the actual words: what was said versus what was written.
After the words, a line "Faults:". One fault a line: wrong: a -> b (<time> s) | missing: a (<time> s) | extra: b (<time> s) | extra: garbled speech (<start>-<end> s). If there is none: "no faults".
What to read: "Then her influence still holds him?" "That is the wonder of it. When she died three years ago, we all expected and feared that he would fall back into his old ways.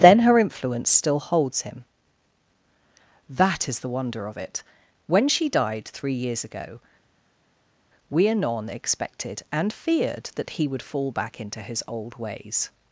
"Then her influence still holds him?" "That is the wonder of it. When she died three years ago, we anon expected and feared that he would fall back into his old ways.
Faults:
wrong: all -> anon (8.3 s)